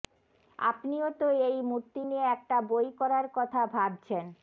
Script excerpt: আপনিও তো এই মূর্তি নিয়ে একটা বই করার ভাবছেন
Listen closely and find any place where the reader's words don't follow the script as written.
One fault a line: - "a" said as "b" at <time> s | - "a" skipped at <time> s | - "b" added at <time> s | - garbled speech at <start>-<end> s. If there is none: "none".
- "কথা" added at 3.4 s